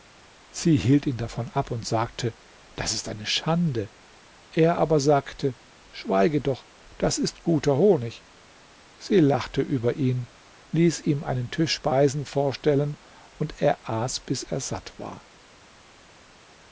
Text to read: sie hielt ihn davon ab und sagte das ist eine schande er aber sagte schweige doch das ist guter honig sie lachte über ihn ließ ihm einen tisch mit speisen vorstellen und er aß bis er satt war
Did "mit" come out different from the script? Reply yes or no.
yes